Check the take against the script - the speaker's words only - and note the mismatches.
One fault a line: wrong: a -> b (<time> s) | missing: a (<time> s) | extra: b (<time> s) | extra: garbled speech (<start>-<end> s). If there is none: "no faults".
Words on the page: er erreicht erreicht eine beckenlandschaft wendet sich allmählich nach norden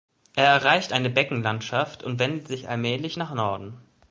missing: erreicht (0.9 s)
extra: und (2.0 s)